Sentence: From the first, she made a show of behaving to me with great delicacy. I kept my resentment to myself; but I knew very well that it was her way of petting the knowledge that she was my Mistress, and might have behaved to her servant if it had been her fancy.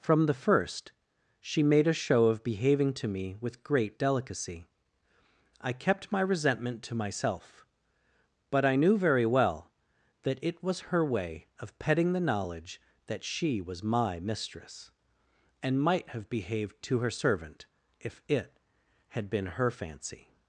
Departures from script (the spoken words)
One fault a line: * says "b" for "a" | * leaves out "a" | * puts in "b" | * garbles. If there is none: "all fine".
all fine